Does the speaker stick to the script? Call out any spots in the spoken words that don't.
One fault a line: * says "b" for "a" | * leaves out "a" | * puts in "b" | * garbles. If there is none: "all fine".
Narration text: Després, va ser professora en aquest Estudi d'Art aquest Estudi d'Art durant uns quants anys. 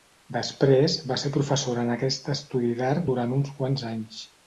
* leaves out "aquest Estudi d'Art"